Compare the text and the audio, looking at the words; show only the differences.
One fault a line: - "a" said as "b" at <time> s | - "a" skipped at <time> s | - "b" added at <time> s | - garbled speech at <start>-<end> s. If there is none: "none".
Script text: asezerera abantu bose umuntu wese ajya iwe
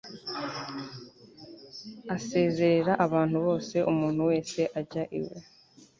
none